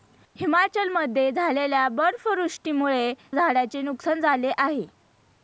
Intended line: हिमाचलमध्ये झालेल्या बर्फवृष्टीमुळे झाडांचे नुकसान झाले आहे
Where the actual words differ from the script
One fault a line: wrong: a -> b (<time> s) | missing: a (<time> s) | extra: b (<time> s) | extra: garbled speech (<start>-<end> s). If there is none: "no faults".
no faults